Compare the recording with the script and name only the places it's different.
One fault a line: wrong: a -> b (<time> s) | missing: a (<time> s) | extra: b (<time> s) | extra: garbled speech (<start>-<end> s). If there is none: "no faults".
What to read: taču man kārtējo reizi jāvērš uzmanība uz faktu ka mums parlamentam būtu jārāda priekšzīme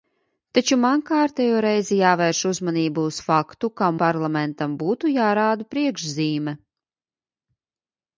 missing: mums (3.9 s)